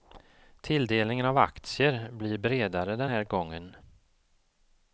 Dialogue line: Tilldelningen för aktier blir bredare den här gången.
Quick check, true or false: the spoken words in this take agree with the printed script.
false